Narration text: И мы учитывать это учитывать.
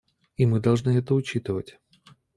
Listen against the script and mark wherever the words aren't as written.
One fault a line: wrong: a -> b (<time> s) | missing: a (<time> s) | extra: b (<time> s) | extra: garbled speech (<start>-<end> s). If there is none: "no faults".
wrong: учитывать -> должны (0.6 s)